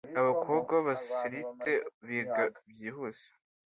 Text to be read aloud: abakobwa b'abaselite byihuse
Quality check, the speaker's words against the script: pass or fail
fail